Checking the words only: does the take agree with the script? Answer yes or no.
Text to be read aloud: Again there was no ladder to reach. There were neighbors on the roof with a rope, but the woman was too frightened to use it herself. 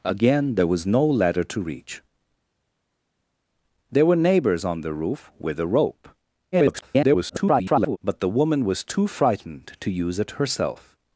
no